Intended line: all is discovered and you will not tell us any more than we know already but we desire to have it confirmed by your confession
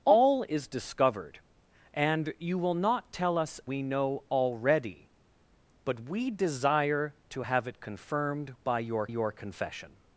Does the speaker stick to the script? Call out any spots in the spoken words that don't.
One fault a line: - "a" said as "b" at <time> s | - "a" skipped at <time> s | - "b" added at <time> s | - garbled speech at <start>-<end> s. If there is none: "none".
- "any more than" skipped at 3.6 s
- "your" added at 9.1 s